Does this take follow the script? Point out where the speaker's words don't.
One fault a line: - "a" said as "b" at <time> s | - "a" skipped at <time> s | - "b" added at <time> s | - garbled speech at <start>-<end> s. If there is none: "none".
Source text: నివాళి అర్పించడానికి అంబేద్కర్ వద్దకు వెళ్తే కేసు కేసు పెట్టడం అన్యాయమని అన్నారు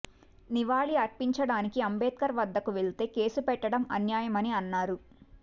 - "కేసు" skipped at 3.4 s